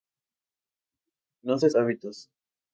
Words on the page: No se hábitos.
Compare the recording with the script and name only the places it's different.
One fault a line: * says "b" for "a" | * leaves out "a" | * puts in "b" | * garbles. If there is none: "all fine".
all fine